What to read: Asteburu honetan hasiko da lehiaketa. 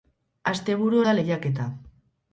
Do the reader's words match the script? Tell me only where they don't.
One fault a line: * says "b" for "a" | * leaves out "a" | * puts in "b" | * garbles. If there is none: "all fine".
* leaves out "honetan hasiko"